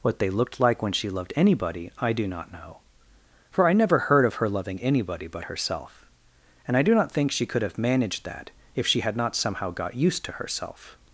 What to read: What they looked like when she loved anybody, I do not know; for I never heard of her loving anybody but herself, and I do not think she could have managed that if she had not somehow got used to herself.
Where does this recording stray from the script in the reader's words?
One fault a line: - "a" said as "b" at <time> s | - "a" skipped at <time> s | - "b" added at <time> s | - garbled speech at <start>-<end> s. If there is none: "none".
none